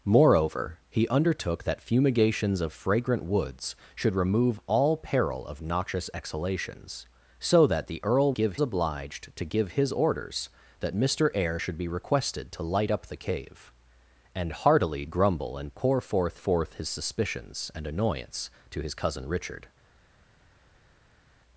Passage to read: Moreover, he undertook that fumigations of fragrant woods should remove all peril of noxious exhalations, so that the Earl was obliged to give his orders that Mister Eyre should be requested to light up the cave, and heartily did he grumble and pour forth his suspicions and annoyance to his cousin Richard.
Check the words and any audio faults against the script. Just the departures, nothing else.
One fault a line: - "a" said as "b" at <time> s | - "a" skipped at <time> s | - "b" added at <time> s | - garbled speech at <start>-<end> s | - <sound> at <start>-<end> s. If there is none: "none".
- "was" said as "give" at 8.3 s
- "did he" skipped at 15.1 s
- "forth" added at 16.3 s